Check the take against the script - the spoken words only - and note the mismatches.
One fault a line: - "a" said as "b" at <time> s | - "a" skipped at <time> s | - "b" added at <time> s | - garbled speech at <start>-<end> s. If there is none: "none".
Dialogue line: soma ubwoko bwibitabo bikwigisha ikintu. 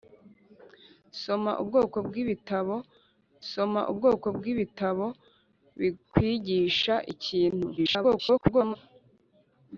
- "soma ubwoko bwibitabo" added at 3.5 s
- garbled speech at 7.8-8.8 s